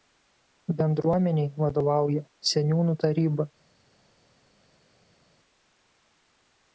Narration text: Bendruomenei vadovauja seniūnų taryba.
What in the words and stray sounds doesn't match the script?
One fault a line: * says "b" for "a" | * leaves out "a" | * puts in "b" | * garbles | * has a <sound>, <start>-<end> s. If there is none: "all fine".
all fine